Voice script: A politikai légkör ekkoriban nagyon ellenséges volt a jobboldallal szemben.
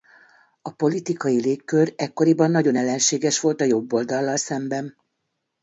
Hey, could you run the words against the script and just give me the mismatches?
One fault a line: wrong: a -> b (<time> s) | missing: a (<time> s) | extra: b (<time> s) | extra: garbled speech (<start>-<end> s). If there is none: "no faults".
no faults